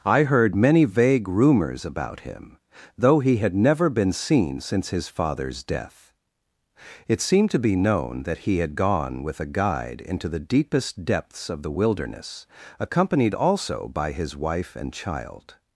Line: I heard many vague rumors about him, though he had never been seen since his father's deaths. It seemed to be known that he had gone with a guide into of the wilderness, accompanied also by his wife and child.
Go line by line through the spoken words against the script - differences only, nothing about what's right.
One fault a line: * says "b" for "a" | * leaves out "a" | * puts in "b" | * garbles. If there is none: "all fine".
* says "death" for "deaths"
* puts in "the deepest depths"